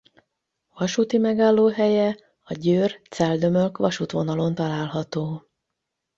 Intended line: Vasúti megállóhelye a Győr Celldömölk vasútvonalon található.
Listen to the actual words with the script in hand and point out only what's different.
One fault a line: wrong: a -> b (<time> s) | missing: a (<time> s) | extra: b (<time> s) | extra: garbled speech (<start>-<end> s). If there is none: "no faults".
no faults